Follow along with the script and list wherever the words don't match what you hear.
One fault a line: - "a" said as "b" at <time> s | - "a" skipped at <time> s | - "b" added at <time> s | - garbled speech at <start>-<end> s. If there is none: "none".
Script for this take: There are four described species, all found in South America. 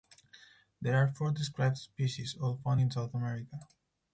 none